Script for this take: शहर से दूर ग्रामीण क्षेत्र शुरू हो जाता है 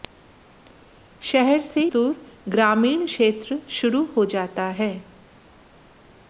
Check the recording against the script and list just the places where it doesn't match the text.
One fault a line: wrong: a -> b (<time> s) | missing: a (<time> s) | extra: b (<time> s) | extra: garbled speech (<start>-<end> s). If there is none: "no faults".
no faults